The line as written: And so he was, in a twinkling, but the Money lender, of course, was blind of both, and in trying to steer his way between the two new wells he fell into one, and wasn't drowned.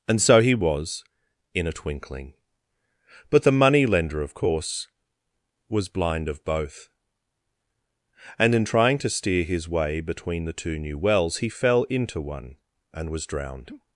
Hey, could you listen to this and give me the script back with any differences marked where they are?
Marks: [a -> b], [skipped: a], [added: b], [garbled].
And so he was, in a twinkling, but the Money lender, of course, was blind of both, and in trying to steer his way between the two new wells he fell into one, and [wasn't -> was] drowned.